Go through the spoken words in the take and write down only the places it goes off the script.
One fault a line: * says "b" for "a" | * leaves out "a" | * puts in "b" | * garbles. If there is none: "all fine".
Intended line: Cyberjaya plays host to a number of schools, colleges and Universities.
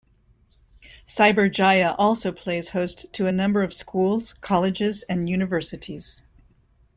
* puts in "also"